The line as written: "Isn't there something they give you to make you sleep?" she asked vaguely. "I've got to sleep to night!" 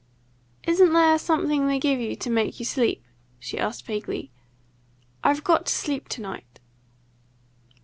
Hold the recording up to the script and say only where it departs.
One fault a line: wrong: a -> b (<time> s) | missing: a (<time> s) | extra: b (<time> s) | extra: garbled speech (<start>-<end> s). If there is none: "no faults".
no faults